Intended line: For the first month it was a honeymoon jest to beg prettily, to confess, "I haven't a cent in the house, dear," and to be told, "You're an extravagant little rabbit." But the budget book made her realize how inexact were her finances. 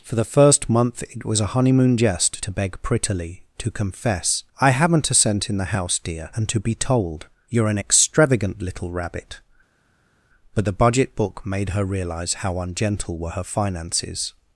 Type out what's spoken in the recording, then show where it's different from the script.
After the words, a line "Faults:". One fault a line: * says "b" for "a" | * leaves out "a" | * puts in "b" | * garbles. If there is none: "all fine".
For the first month it was a honeymoon jest to beg prettily, to confess, "I haven't a cent in the house, dear," and to be told, "You're an extravagant little rabbit." But the budget book made her realize how ungentle were her finances.
Faults:
* says "ungentle" for "inexact"